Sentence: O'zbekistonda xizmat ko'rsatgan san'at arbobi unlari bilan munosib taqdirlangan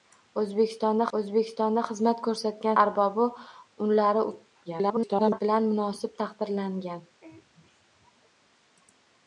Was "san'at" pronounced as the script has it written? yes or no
no